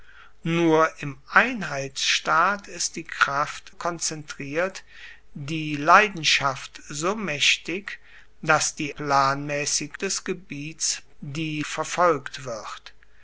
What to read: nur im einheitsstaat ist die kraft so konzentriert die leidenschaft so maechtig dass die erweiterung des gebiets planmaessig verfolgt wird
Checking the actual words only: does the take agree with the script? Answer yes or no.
no